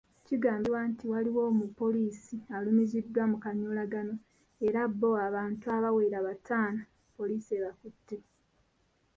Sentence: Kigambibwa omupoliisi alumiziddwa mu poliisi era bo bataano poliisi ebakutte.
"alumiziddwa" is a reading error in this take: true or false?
false